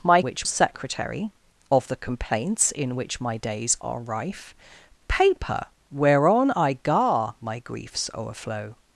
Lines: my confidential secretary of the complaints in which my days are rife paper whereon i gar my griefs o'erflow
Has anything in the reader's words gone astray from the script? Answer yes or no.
yes